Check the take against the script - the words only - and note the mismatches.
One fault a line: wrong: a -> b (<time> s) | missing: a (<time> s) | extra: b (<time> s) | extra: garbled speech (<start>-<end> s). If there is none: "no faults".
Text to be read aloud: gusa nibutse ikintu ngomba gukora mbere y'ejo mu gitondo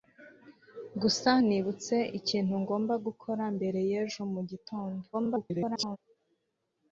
extra: garbled speech (5.1-6.0 s)